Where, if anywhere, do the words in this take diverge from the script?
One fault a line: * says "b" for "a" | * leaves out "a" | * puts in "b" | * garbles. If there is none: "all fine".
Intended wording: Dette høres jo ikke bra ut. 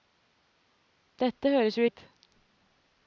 * leaves out "ikke bra"